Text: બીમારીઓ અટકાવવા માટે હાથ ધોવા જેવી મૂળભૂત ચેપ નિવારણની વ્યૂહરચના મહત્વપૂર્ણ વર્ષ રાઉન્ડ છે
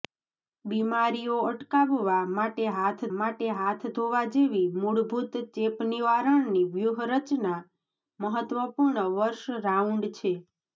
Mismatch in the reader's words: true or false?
true